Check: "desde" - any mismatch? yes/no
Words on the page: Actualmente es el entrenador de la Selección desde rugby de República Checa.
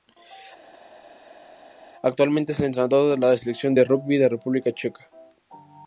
yes